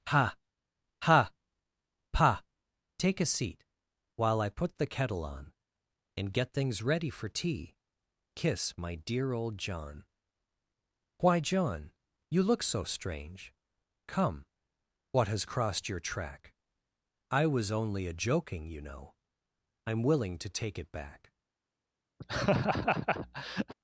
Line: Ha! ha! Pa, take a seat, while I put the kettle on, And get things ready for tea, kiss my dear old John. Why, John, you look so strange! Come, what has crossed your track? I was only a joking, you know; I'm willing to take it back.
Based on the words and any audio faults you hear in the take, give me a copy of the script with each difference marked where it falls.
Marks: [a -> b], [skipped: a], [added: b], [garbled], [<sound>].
Ha! ha! Pa, take a seat, while I put the kettle on, And get things ready for tea, kiss my dear old John. Why, John, you look so strange! Come, what has crossed your track? I was only a joking, you know; I'm willing to take it back. [laugh]